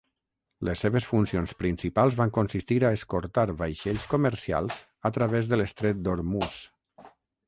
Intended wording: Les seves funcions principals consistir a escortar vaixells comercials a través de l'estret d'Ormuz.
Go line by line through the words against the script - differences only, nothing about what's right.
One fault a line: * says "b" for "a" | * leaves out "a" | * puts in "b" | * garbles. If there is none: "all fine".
* puts in "van"